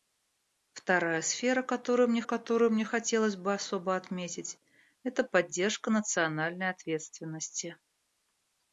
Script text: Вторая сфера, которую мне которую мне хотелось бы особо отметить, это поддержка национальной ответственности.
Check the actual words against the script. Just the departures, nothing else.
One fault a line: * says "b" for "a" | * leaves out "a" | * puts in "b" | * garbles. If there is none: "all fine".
all fine